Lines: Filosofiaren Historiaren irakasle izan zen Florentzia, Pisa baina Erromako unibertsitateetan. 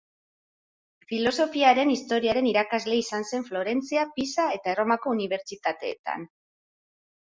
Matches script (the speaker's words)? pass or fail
fail